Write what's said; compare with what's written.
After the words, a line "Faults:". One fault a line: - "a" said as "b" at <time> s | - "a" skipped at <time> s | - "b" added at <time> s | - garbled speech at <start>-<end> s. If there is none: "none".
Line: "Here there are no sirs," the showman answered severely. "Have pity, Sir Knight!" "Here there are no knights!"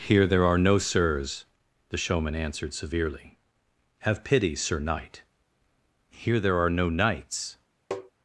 "Here there are no sirs," the showman answered severely. "Have pity, Sir Knight!" "Here there are no knights!"
Faults:
none